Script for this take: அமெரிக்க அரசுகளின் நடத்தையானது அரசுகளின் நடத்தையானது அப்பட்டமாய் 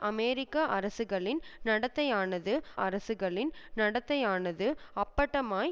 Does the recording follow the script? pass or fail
pass